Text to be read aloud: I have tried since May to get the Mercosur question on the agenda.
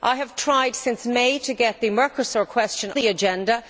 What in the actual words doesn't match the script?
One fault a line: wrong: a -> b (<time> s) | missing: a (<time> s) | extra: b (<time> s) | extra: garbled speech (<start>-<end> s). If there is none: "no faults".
missing: on (2.9 s)